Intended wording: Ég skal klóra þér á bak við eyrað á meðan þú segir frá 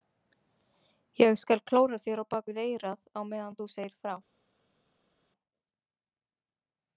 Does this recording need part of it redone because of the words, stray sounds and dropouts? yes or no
no